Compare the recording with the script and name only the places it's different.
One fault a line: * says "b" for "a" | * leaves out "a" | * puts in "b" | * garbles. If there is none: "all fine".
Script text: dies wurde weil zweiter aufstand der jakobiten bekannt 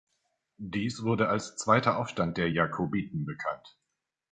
* says "als" for "weil"